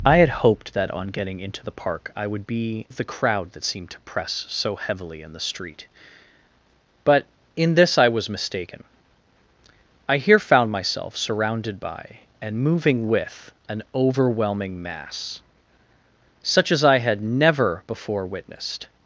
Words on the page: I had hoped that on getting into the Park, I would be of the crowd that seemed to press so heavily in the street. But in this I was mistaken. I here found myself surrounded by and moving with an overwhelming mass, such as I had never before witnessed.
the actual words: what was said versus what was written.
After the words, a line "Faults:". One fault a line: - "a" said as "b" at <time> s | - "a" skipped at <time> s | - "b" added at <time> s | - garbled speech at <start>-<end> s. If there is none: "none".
I had hoped that on getting into the Park, I would be of the crowd that seemed to press so heavily in the street. But in this I was mistaken. I here found myself surrounded by and moving with an overwhelming mass, such as I had never before witnessed.
Faults:
none